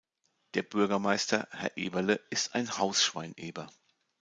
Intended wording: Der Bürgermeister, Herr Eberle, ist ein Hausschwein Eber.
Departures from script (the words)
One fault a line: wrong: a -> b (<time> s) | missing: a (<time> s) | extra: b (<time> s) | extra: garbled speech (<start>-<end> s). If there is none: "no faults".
no faults